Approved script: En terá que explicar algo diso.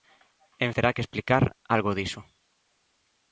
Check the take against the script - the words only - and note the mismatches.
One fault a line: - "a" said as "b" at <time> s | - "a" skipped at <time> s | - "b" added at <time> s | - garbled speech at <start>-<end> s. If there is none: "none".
none